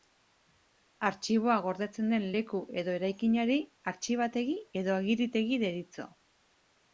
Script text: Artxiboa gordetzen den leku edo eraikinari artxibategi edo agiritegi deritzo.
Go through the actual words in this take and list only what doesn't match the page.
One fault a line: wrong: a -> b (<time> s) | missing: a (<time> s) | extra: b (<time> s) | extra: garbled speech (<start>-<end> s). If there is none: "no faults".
no faults